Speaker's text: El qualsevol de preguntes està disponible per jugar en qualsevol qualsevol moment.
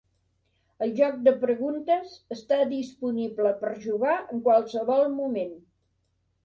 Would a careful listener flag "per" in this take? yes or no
no